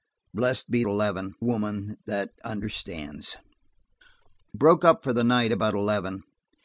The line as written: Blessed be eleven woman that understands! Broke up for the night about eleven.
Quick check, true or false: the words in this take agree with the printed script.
true